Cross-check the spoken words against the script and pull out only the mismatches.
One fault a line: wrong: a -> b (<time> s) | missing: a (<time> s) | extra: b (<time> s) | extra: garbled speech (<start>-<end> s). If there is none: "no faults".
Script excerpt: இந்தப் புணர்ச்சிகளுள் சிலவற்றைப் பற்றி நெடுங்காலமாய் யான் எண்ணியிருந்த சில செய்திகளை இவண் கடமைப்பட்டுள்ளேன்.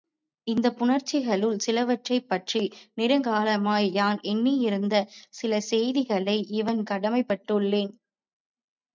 no faults